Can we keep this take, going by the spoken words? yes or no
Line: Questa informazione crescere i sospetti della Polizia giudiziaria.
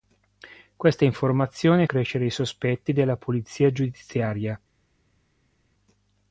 yes